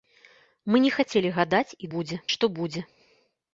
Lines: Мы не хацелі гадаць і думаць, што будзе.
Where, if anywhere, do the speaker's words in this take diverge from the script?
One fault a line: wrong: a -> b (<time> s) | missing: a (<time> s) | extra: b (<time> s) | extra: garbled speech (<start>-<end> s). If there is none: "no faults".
wrong: думаць -> будзе (2.0 s)